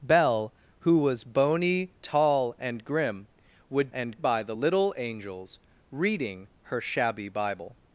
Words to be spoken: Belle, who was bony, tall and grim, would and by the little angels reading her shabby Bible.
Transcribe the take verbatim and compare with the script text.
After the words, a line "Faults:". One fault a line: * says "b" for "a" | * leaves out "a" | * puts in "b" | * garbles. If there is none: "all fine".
Belle, who was bony, tall and grim, would and by the little angels reading her shabby Bible.
Faults:
all fine